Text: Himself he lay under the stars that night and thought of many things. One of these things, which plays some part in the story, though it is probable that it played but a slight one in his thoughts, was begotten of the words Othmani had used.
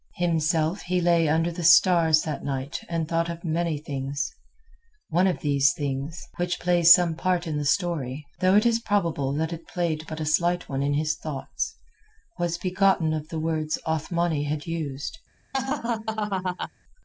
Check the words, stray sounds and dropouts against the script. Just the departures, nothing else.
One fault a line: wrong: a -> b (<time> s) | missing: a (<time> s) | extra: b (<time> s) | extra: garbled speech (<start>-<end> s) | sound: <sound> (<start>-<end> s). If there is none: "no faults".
sound: laugh (15.5-16.7 s)